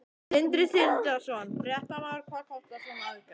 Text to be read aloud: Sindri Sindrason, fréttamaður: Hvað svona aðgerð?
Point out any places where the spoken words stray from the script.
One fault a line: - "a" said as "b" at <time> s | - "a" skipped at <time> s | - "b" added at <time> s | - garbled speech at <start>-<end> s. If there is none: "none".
- "kostar" added at 2.5 s